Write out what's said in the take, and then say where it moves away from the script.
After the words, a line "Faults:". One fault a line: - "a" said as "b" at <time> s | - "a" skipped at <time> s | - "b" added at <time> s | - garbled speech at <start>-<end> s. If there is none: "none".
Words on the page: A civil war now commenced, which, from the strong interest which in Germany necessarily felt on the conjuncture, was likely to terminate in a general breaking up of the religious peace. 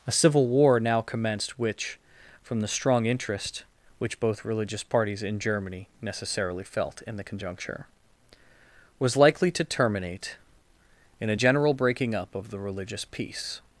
A civil war now commenced, which, from the strong interest which both religious parties in Germany necessarily felt in the conjuncture, was likely to terminate in a general breaking up of the religious peace.
Faults:
- "both religious parties" added at 4.2 s
- "on" said as "in" at 7.0 s